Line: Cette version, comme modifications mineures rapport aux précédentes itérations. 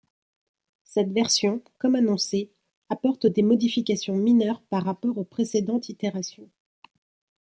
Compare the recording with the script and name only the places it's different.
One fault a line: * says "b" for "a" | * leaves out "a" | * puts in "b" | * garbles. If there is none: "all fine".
* puts in "annoncé apporte des"
* puts in "par"